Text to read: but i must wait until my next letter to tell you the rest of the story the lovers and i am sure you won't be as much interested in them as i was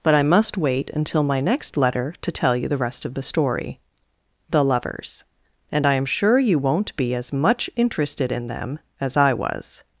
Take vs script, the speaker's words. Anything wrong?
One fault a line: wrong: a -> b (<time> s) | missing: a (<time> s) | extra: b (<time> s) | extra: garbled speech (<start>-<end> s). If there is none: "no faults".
no faults